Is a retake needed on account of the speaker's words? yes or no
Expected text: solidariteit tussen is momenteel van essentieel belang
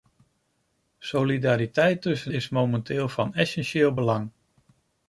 no